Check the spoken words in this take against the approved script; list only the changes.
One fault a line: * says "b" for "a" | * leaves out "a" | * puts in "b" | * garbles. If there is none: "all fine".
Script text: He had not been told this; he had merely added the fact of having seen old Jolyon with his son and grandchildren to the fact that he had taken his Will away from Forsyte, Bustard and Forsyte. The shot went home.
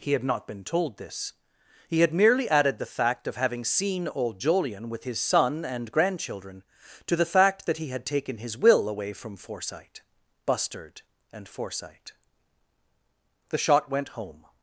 all fine